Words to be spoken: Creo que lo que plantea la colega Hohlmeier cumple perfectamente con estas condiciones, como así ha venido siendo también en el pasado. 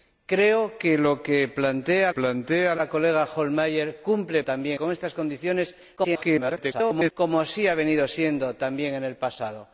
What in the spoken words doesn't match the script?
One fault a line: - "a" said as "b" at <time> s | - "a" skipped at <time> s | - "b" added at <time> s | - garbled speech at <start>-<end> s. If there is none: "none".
- "plantea" added at 2.1 s
- "perfectamente" said as "también" at 4.4 s
- garbled speech at 6.0-7.1 s